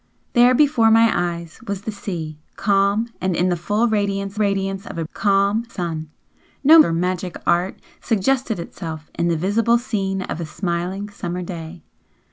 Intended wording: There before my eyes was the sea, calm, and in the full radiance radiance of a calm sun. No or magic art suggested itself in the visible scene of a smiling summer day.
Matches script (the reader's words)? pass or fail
pass